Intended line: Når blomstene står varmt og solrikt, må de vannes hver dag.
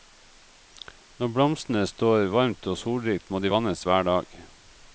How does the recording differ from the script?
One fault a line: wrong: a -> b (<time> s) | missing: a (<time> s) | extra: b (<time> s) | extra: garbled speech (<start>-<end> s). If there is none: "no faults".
no faults